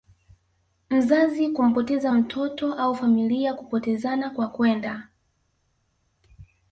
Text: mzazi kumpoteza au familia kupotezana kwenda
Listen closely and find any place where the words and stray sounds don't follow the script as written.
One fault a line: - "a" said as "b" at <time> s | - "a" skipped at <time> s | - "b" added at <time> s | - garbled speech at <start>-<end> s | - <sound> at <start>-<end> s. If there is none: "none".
- "mtoto" added at 2.1 s
- "kwa" added at 4.3 s